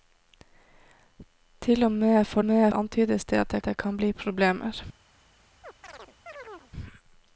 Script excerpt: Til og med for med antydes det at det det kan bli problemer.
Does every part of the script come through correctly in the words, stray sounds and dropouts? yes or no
no